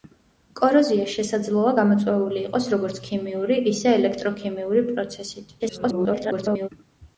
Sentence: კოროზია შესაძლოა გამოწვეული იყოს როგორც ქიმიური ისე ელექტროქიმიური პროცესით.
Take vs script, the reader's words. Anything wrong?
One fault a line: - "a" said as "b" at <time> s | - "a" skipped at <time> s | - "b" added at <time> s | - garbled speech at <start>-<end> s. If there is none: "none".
- garbled speech at 5.6-6.7 s